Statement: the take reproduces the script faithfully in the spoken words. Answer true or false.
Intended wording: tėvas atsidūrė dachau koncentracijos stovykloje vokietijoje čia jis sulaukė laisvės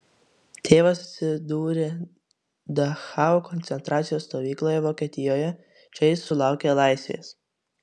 true